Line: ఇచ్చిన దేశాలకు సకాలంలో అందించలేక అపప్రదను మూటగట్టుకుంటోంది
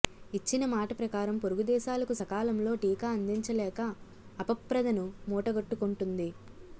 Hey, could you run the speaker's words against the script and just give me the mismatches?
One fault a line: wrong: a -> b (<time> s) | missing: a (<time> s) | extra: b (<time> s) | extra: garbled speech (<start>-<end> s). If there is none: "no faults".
extra: మాట ప్రకారం పొరుగు (0.7 s)
extra: టీకా (2.8 s)